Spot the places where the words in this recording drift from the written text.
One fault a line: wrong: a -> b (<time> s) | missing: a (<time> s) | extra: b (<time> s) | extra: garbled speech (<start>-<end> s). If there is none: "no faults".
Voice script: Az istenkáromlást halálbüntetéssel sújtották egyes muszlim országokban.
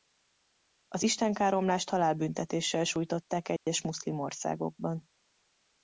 no faults